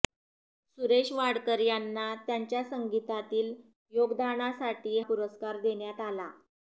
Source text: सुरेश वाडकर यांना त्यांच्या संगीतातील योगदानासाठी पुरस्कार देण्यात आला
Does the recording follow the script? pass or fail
pass